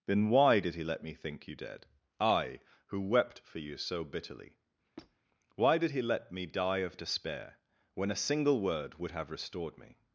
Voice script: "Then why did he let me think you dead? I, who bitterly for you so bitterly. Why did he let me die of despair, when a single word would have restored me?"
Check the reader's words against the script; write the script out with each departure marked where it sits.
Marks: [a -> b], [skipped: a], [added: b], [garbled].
"Then why did he let me think you dead? I, who [bitterly -> wept] for you so bitterly. Why did he let me die of despair, when a single word would have restored me?"